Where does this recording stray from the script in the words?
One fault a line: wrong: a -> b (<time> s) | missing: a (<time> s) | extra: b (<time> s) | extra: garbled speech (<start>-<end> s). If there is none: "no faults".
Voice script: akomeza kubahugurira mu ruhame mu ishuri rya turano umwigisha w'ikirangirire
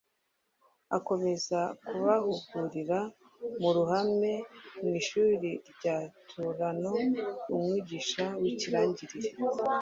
no faults